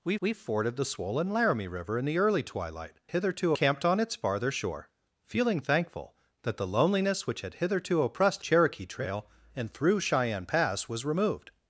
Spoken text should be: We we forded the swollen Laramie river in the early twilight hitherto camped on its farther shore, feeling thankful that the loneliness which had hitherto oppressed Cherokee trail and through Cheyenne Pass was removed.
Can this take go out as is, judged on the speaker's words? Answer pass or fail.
pass